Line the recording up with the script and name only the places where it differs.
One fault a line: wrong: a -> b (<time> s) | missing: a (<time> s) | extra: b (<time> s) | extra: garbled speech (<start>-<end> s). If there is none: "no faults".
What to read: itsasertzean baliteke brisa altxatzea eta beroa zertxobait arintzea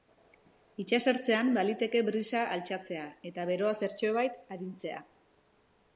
no faults